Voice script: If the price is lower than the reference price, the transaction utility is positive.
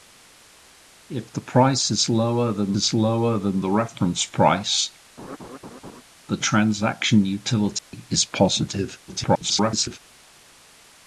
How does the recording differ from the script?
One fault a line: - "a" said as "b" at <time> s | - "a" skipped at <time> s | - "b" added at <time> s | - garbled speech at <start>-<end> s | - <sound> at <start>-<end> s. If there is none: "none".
- "is lower than" added at 2.8 s
- laugh at 5.2-6.0 s
- dropout at 7.8-7.9 s
- garbled speech at 9.1-10.0 s